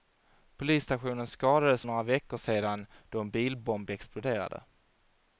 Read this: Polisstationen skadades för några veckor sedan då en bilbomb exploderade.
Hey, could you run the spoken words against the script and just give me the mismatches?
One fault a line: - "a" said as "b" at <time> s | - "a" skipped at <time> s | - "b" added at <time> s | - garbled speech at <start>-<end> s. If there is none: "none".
- "för" skipped at 1.8 s